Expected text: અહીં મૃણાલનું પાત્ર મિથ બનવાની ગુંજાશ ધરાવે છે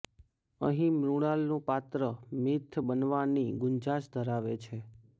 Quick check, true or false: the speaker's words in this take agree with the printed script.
true